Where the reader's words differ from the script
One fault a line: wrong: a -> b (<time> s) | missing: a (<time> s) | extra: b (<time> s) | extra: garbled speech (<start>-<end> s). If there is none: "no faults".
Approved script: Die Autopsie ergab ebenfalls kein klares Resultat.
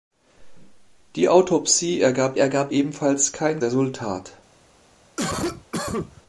extra: ergab (2.4 s)
missing: klares (3.6 s)